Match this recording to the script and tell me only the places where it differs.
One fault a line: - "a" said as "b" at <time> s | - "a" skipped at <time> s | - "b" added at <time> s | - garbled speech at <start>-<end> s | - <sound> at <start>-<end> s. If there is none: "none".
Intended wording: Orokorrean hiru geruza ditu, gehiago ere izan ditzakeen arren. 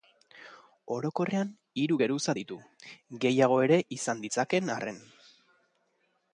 none